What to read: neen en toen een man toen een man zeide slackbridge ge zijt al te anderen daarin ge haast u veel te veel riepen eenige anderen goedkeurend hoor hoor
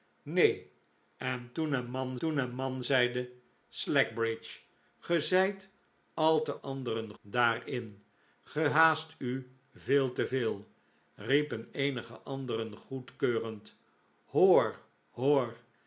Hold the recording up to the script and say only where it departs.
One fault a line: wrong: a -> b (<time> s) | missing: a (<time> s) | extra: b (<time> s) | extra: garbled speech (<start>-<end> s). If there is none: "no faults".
no faults